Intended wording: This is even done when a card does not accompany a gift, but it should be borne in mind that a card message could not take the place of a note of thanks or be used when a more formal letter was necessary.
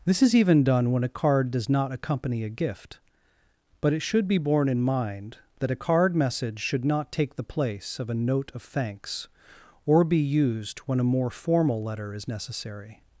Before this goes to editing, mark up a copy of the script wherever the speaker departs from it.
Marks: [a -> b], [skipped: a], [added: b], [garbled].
This is even done when a card does not accompany a gift, but it should be borne in mind that a card message [could -> should] not take the place of a note of thanks or be used when a more formal letter [was -> is] necessary.